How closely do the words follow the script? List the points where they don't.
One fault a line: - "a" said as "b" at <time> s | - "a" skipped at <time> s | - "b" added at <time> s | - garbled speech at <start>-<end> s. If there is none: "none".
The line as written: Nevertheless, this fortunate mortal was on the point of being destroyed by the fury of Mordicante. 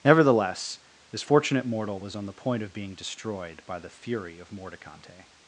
none